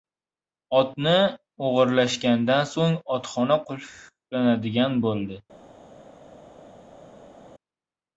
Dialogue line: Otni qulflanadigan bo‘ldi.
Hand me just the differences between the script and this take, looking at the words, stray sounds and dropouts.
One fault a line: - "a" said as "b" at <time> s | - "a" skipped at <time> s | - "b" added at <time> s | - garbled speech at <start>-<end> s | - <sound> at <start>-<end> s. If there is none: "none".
- "o‘g‘irlashgandan so‘ng otxona" added at 1.7 s